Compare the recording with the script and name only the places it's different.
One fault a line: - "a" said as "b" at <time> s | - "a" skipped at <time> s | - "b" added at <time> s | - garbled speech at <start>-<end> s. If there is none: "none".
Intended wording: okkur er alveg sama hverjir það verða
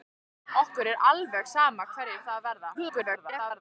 - garbled speech at 2.7-3.6 s